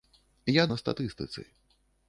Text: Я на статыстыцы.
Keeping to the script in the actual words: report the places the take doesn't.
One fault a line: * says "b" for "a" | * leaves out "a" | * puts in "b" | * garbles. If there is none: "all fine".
all fine